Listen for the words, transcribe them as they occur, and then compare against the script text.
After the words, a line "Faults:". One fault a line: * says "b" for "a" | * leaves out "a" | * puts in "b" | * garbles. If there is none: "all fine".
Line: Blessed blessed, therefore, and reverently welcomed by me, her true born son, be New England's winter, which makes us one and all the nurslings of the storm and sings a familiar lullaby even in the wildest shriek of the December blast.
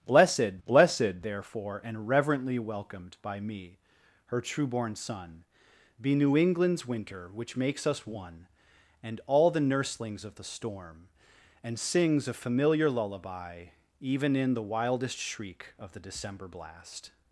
Blessed blessed, therefore, and reverently welcomed by me, her true born son, be New England's winter, which makes us one and all the nurslings of the storm and sings a familiar lullaby even in the wildest shriek of the December blast.
Faults:
all fine